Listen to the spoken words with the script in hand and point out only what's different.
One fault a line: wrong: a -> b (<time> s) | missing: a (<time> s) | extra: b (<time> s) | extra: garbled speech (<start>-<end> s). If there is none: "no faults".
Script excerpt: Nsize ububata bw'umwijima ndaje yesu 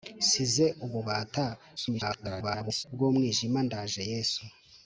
extra: garbled speech (1.8-2.8 s)